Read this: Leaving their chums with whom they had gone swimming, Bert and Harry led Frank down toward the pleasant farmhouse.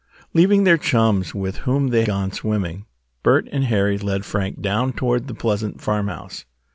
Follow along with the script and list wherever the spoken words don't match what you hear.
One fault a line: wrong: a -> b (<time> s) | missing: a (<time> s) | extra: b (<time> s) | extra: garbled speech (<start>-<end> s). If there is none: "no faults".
missing: had (2.0 s)